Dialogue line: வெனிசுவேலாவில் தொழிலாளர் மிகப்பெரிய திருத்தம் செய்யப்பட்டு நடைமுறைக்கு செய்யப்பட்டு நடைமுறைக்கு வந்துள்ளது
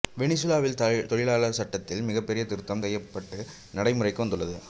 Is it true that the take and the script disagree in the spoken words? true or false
true